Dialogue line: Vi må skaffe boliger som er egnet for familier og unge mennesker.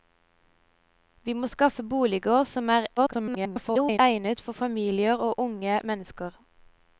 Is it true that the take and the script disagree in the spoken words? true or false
true